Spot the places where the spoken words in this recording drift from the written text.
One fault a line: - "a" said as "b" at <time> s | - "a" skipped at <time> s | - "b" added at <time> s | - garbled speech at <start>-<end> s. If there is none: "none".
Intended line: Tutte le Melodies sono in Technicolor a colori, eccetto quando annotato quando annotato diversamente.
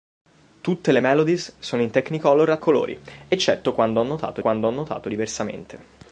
none